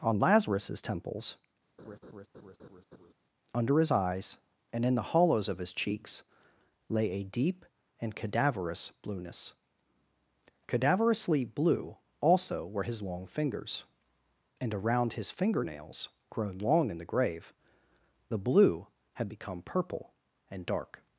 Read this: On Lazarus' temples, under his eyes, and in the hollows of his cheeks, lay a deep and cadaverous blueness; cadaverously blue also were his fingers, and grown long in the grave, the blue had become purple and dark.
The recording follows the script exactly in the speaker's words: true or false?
false